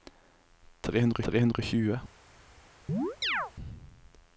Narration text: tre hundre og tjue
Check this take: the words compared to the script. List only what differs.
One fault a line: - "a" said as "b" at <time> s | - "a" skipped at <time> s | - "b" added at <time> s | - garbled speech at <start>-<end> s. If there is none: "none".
- "tre hundre" added at 1.3 s